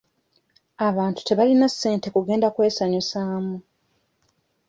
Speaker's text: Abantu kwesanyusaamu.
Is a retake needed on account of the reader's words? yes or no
yes